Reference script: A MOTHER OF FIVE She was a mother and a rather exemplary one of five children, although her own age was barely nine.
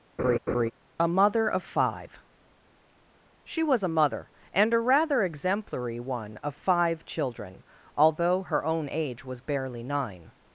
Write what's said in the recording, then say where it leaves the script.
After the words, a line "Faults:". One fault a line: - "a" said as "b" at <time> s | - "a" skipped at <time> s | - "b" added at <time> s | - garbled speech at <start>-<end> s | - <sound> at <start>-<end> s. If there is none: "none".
A MOTHER OF FIVE She was a mother and a rather exemplary one of five children, although her own age was barely nine.
Faults:
- laugh at 0.2-0.7 s